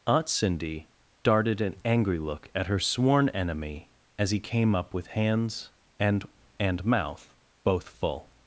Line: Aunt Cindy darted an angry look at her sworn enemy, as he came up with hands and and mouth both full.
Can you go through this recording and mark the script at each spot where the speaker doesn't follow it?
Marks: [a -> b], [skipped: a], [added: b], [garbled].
Aunt Cindy darted an angry look at her sworn enemy, as he came up with hands and and mouth both full.